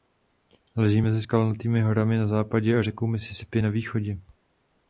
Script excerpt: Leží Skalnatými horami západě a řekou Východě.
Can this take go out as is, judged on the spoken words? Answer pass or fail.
fail